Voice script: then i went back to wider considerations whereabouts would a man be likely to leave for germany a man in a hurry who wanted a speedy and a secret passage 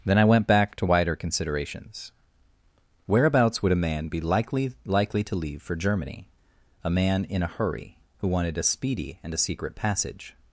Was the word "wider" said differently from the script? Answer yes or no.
no